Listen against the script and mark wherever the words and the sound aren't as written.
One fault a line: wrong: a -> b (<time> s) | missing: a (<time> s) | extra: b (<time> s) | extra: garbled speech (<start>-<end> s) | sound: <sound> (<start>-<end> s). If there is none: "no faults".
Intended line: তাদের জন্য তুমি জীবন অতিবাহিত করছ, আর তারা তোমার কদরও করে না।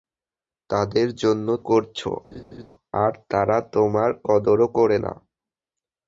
missing: তুমি জীবন অতিবাহিত (1.5 s)
sound: laugh (2.3-2.7 s)